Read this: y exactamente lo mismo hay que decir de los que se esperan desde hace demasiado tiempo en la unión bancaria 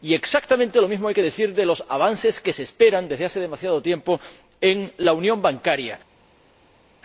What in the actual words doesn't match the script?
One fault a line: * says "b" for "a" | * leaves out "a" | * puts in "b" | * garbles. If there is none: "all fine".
* puts in "avances"